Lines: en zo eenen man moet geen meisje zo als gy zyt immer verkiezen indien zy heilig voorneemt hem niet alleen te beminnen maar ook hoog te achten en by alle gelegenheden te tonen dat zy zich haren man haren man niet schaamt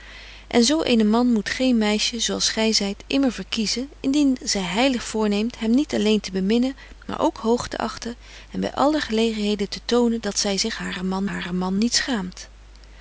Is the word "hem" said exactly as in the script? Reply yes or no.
yes